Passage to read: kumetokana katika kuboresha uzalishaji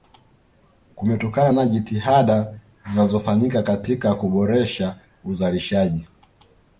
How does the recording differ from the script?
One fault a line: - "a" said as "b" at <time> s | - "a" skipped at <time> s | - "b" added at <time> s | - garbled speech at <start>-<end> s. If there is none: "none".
- "na jitihada zinazofanyika" added at 1.5 s